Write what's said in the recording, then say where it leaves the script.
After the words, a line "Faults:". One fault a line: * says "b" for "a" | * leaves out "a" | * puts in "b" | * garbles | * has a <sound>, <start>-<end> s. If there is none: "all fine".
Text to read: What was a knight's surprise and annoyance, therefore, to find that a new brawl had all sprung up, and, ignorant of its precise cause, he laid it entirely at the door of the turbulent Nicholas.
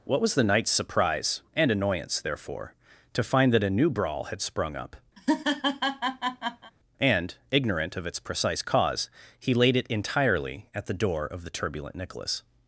What was the knight's surprise and annoyance, therefore, to find that a new brawl had sprung up, and, ignorant of its precise cause, he laid it entirely at the door of the turbulent Nicholas.
Faults:
* says "the" for "a"
* leaves out "all"
* has a laugh, 5.2-6.7 s